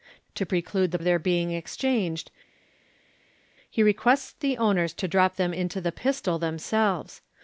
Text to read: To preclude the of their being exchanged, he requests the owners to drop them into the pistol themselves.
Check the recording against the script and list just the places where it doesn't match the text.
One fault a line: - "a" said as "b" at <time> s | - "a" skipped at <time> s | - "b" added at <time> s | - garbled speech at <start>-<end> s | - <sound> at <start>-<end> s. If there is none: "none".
none